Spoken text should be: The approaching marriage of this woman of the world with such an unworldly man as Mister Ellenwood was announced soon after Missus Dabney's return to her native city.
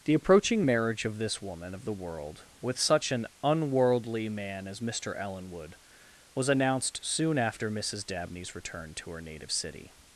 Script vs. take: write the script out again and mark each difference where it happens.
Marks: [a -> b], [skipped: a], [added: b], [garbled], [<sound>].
The approaching marriage of this woman of the world with such an unworldly man as Mister Ellenwood was announced soon after Missus Dabney's return to her native city.